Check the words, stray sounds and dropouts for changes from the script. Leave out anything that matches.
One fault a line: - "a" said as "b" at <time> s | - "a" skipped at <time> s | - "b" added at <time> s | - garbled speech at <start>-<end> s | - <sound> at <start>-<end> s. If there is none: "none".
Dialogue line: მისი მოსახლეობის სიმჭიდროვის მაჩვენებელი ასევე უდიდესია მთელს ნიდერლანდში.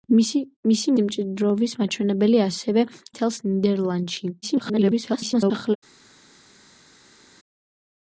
- "მოსახლეობის" skipped at 0.9 s
- "უდიდესია" skipped at 2.9 s
- garbled speech at 4.4-5.8 s